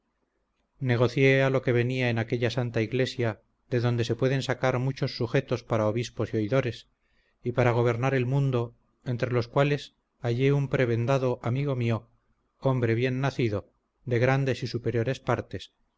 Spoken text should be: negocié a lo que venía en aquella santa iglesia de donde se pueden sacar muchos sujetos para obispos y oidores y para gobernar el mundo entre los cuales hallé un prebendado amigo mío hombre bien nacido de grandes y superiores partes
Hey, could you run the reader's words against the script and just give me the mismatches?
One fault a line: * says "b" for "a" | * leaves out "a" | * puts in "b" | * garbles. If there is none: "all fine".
all fine